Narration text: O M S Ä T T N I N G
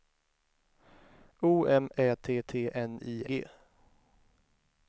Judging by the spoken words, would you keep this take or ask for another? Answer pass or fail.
fail